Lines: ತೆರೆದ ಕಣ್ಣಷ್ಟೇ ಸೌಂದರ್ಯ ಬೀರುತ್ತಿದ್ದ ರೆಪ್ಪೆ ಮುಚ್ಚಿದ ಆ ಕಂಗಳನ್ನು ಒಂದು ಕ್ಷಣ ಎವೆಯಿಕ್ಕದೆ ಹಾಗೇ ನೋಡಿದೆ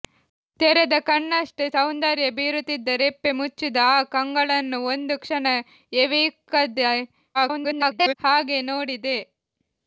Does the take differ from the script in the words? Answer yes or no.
yes